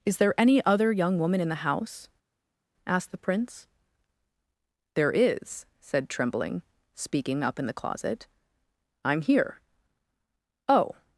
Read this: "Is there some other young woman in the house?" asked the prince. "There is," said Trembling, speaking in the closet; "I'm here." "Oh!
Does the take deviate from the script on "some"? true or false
true